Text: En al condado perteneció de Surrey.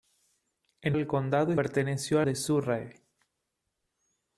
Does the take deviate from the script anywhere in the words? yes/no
no